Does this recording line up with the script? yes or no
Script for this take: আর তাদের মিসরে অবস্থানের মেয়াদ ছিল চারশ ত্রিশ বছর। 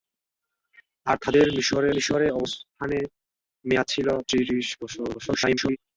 no